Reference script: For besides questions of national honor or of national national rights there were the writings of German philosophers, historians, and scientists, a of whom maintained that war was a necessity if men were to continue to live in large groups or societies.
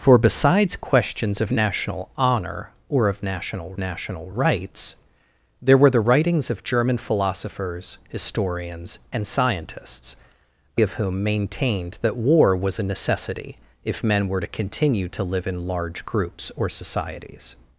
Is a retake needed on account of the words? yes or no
no